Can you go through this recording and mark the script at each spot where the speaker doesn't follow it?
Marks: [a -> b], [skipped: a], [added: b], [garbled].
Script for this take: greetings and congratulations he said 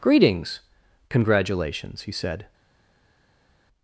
greetings [skipped: and] congratulations he said